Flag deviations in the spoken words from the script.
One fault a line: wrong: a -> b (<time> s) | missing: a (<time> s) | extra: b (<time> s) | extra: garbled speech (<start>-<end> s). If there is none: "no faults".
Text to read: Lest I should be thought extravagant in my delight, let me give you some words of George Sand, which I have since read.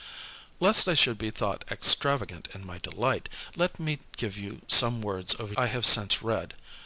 missing: George Sand which (5.5 s)